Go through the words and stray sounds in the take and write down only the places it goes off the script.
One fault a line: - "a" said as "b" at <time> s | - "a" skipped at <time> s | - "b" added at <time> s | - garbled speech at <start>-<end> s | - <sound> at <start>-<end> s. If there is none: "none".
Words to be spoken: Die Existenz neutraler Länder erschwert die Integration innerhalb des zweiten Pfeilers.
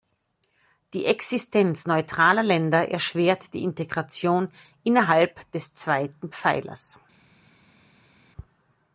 none